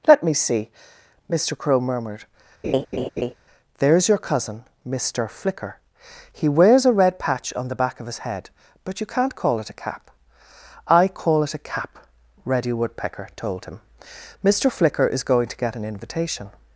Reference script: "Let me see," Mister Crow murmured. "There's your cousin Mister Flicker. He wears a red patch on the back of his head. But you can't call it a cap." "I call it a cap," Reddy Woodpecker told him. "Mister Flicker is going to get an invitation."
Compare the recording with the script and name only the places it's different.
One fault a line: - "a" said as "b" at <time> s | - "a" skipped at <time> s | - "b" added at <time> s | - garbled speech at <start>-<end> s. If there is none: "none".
none